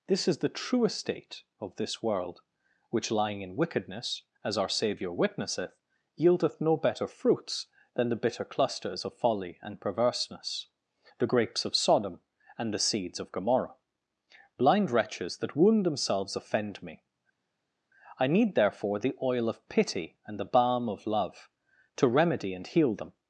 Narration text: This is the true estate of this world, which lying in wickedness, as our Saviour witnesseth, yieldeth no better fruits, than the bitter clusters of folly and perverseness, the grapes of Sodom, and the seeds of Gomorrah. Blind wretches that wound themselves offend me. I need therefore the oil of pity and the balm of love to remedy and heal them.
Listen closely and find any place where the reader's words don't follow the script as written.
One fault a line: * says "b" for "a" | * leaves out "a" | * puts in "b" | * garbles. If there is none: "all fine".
all fine